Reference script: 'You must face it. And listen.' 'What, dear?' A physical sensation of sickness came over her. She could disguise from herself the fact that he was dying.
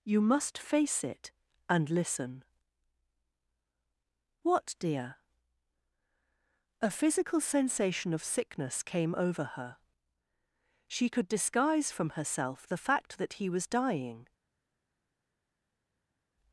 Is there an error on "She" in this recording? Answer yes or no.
no